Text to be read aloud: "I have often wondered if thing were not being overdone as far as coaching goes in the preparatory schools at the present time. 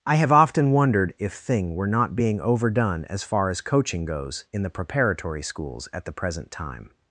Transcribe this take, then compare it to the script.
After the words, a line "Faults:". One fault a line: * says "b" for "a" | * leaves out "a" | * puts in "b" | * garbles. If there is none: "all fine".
"I have often wondered if thing were not being overdone as far as coaching goes in the preparatory schools at the present time.
Faults:
all fine